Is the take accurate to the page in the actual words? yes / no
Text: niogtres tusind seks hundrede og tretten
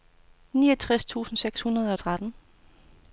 yes